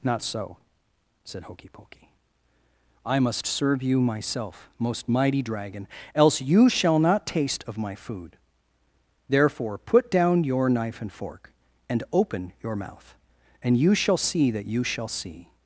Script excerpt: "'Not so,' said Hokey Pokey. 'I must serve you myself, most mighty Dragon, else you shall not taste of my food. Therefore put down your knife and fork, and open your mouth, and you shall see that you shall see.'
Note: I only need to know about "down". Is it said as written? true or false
true